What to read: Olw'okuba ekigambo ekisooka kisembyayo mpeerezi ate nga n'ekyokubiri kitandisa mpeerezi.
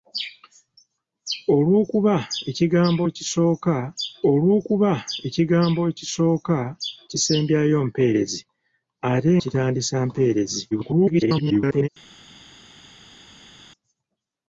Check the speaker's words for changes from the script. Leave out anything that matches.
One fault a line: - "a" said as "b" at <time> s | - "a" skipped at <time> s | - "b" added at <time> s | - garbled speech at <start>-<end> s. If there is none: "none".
- "olw'okuba ekigambo ekisooka" added at 4.3 s
- "nga n'ekyokubiri" skipped at 9.3 s
- garbled speech at 10.7-11.9 s